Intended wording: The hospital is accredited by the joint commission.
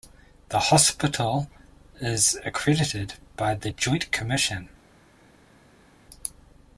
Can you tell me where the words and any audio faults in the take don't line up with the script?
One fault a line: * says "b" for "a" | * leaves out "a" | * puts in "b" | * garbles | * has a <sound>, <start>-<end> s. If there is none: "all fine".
all fine